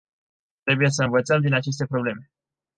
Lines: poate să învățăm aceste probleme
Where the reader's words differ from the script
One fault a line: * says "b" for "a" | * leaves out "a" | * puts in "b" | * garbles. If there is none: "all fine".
* says "trebuie" for "poate"
* puts in "din"